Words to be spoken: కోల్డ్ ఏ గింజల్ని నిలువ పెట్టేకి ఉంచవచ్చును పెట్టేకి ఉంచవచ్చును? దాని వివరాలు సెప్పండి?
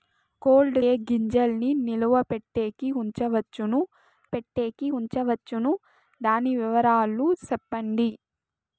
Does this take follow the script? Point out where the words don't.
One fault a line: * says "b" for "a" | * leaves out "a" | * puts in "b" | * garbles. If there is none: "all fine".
all fine